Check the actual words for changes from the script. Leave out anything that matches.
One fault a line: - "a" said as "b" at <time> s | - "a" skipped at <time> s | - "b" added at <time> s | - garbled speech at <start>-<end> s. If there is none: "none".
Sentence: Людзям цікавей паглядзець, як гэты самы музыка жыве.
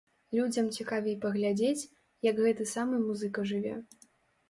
none